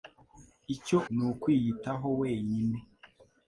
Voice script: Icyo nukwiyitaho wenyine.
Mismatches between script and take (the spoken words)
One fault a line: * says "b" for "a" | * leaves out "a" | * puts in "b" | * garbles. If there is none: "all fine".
all fine